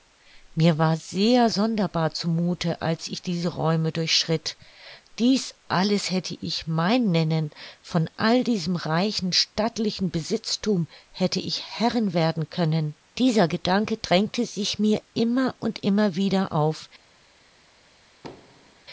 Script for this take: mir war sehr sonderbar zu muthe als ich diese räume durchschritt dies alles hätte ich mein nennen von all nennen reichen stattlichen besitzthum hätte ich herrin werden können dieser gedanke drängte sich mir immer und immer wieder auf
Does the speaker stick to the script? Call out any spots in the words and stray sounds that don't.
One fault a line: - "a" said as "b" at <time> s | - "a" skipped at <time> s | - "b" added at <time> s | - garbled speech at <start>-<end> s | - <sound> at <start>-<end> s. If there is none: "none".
- "nennen" said as "diesem" at 8.4 s
- thud at 18.2-18.8 s